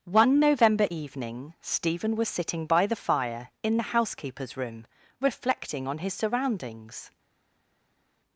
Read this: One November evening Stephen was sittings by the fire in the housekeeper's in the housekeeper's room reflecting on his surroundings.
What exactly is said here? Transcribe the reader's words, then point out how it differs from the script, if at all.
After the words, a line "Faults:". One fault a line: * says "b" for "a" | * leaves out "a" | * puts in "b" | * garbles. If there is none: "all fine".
One November evening Stephen was sitting by the fire in the housekeeper's room reflecting on his surroundings.
Faults:
* says "sitting" for "sittings"
* leaves out "in the housekeeper's"